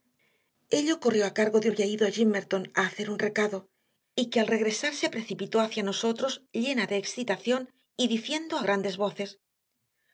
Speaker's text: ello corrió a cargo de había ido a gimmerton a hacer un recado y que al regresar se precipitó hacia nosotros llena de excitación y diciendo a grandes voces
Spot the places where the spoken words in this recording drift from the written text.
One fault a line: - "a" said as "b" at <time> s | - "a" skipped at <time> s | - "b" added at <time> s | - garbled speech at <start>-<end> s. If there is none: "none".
none